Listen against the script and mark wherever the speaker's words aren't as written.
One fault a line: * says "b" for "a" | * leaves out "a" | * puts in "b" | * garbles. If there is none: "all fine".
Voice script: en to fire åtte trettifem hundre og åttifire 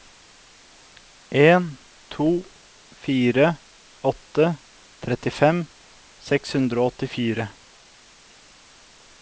* puts in "seks"